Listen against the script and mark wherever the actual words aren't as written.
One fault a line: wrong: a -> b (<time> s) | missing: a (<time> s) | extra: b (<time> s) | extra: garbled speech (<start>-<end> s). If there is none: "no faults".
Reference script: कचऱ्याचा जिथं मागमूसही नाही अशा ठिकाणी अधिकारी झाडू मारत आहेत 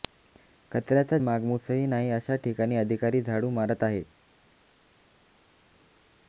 missing: जिथं (1.2 s)